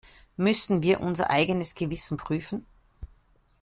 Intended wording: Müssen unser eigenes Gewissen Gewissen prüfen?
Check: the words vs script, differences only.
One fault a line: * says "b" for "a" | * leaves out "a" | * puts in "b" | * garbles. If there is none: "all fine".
* puts in "wir"
* leaves out "Gewissen"